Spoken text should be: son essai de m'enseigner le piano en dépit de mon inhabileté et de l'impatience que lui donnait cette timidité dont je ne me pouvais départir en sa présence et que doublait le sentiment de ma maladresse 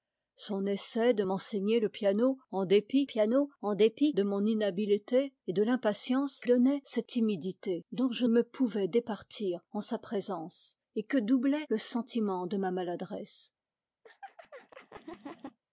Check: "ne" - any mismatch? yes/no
yes